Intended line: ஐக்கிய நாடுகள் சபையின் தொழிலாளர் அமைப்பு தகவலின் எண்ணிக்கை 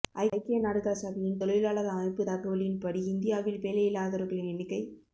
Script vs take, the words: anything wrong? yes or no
yes